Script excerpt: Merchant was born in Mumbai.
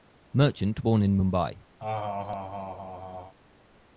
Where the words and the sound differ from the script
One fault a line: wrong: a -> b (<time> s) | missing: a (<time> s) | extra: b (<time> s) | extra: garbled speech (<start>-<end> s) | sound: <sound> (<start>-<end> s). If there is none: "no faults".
missing: was (0.8 s)
sound: laugh (1.8-3.3 s)